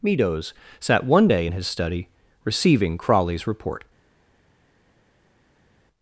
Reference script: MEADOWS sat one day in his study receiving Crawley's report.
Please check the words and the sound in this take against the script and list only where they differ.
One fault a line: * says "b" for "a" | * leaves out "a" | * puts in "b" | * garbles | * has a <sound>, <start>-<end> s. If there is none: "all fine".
all fine